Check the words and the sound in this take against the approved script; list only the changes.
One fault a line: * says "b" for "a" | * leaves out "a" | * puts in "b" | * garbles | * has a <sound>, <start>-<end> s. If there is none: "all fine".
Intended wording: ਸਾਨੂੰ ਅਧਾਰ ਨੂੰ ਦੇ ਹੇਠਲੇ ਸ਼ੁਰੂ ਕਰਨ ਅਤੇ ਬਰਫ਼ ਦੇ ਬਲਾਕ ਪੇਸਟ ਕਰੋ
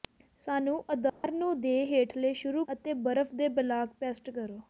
* has a dropout, 1.1-1.2 s
* leaves out "ਕਰਨ"